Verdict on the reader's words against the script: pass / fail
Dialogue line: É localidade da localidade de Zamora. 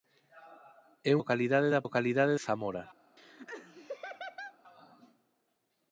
pass